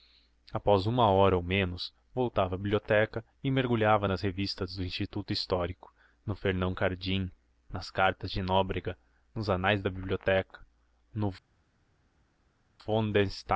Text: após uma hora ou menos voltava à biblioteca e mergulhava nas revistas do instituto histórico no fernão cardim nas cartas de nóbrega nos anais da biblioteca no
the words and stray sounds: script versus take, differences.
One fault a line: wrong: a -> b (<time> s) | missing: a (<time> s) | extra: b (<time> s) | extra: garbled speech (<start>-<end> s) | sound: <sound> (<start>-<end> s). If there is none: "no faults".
no faults